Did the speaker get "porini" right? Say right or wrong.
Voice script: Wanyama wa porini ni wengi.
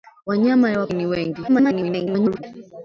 wrong